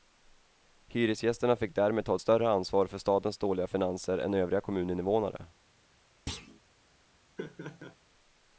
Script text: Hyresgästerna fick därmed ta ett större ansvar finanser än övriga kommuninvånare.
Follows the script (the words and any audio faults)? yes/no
no